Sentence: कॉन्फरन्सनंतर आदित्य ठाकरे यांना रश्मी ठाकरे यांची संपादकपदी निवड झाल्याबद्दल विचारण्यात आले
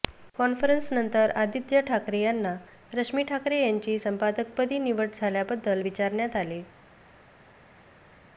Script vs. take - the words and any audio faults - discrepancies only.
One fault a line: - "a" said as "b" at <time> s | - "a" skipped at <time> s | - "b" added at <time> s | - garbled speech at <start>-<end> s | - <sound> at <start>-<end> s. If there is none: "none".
none